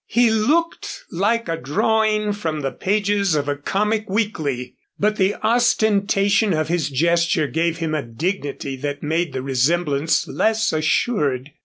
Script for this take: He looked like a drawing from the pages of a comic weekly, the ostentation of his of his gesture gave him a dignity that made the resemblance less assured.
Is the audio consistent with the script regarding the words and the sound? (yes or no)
no